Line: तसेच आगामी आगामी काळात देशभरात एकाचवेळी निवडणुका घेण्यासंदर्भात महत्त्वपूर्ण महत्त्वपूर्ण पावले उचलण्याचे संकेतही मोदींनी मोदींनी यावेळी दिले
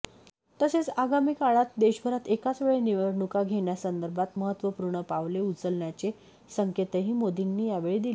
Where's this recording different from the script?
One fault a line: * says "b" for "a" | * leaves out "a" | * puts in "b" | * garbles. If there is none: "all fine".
* leaves out "आगामी"
* leaves out "महत्त्वपूर्ण"
* leaves out "मोदींनी"